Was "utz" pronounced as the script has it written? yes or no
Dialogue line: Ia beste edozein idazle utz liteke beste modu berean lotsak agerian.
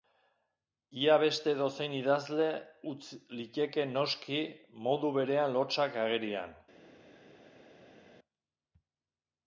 yes